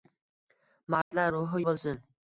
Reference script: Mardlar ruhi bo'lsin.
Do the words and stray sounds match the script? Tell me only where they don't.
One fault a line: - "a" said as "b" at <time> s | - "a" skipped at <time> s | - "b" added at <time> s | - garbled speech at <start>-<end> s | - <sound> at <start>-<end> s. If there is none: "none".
- dropout at 1.0-1.1 s